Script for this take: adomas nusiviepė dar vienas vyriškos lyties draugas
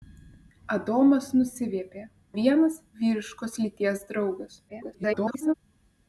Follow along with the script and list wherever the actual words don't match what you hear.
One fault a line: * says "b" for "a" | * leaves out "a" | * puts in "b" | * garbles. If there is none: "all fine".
* leaves out "dar"
* garbles